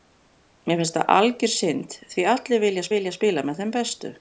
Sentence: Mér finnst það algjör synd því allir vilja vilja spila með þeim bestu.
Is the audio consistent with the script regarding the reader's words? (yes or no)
yes